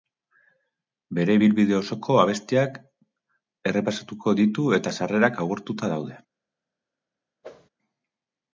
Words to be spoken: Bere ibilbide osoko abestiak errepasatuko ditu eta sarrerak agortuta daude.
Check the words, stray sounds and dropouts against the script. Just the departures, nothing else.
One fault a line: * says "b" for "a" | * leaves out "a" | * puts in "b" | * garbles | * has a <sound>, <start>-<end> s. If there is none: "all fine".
* has a whoosh, 7.4-7.7 s